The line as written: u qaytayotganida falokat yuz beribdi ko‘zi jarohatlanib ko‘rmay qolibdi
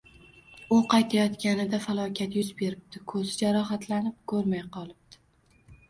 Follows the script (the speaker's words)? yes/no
yes